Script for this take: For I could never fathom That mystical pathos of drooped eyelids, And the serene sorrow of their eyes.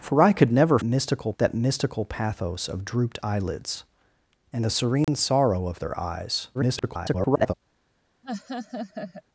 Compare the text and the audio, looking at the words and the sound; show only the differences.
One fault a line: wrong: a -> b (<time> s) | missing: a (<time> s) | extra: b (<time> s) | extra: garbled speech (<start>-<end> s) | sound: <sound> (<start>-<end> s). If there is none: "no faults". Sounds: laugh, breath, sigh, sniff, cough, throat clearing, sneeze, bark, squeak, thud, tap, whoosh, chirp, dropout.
wrong: fathom -> mystical (0.8 s)
sound: dropout (5.0-5.1 s)
extra: garbled speech (6.5-7.5 s)
sound: laugh (8.2-9.2 s)